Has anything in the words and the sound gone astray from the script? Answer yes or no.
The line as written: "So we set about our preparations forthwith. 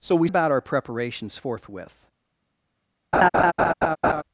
yes